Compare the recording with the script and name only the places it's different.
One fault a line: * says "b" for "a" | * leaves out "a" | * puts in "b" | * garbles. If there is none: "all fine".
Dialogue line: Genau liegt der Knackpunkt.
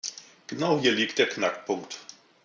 * puts in "hier"